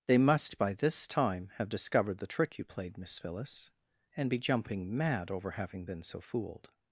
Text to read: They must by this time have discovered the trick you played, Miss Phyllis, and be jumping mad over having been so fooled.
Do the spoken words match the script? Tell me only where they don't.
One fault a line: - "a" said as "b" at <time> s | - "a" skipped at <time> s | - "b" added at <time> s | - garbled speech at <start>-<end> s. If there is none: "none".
none